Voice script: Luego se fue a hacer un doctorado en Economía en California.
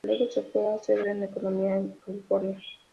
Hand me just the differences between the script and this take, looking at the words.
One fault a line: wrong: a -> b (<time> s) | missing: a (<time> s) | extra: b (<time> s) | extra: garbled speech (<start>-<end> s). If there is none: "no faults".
missing: un doctorado (1.0 s)